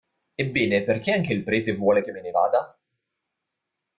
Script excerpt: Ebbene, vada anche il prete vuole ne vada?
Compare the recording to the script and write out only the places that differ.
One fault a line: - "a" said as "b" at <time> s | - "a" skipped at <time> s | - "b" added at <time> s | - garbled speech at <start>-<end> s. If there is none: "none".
- "vada" said as "perché" at 0.8 s
- "che me" added at 2.0 s